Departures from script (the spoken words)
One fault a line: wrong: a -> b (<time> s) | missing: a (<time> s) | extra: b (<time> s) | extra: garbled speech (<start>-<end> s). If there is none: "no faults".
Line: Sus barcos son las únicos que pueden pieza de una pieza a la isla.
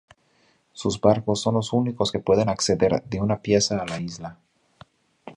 wrong: las -> los (1.5 s)
wrong: pieza -> acceder (2.5 s)